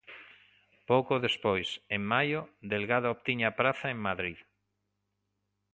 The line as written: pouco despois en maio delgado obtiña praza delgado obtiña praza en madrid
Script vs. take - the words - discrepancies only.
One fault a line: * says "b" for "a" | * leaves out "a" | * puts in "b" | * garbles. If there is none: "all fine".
* leaves out "delgado obtiña praza"